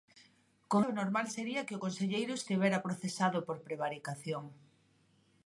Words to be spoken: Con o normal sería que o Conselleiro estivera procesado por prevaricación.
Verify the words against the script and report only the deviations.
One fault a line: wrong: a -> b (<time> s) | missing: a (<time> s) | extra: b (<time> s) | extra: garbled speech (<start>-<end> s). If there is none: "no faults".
no faults